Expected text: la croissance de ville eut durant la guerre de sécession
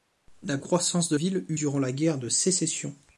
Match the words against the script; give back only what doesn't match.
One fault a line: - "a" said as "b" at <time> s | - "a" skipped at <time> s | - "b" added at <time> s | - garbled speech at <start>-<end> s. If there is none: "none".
none